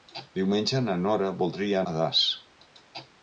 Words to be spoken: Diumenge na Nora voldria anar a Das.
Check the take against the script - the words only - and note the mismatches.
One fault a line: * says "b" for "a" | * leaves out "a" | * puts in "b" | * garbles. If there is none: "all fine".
* leaves out "anar"